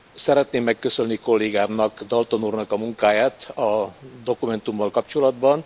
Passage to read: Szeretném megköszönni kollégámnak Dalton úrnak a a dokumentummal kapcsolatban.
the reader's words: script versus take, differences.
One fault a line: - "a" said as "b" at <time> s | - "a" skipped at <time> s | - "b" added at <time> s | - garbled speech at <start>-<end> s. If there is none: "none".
- "munkáját" added at 2.8 s